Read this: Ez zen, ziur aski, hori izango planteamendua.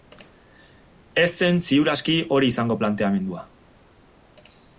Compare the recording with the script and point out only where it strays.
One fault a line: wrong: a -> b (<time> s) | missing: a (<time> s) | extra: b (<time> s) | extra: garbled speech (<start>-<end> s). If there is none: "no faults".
no faults